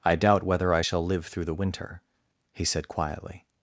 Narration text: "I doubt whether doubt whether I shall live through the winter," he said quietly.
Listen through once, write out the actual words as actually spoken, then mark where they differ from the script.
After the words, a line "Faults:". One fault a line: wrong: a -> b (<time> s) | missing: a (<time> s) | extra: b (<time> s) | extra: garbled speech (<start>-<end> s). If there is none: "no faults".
"I doubt whether I shall live through the winter," he said quietly.
Faults:
missing: doubt whether (0.7 s)